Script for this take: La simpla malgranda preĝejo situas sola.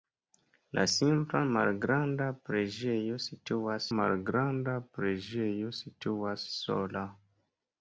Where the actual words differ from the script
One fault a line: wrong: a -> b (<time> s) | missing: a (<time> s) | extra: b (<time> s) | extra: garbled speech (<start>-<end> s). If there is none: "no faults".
extra: malgranda preĝejo situas (4.0 s)